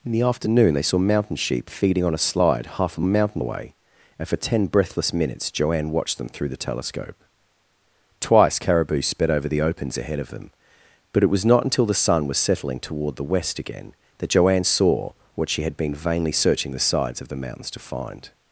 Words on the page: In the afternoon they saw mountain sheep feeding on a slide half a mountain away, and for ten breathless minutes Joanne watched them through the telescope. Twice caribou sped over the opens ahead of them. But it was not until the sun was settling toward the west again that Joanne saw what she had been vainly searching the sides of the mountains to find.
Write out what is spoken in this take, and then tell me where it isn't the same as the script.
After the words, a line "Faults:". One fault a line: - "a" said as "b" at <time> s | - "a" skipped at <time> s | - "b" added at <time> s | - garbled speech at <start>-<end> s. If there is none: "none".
In the afternoon they saw mountain sheep feeding on a slide half a mountain away, and for ten breathless minutes Joanne watched them through the telescope. Twice caribou sped over the opens ahead of them. But it was not until the sun was settling toward the west again that Joanne saw what she had been vainly searching the sides of the mountains to find.
Faults:
none